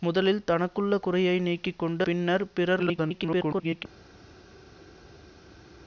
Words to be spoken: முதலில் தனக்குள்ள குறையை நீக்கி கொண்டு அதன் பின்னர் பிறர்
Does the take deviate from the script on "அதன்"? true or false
true